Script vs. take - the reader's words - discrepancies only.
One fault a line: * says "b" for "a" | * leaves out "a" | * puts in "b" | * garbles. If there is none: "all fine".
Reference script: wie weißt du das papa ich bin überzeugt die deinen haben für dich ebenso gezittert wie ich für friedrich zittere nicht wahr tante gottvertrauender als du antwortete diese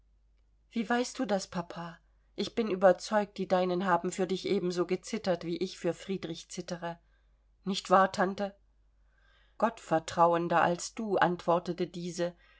all fine